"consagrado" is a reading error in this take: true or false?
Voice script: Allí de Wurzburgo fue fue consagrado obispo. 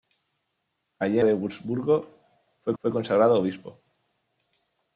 false